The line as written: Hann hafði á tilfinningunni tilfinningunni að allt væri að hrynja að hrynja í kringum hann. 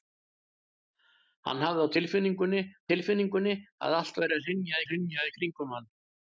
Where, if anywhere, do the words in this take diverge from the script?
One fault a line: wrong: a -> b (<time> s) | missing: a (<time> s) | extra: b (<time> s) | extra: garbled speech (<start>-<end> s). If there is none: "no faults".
no faults